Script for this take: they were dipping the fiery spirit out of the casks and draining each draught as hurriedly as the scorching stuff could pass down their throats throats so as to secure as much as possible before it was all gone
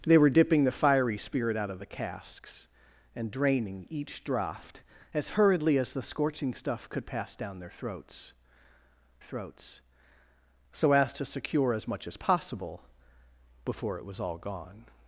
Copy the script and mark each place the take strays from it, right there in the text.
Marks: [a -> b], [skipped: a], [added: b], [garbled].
they were dipping the fiery spirit out of the casks and draining each draught as hurriedly as the scorching stuff could pass down their throats throats so as to secure as much as possible before it was all gone